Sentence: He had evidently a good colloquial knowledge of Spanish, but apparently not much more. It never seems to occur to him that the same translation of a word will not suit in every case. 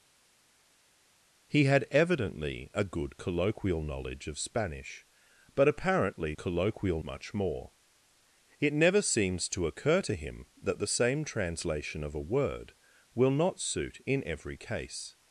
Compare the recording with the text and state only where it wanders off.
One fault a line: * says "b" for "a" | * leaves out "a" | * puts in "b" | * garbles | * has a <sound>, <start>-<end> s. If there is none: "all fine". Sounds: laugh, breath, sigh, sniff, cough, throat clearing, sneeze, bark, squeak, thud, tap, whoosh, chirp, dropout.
* says "colloquial" for "not"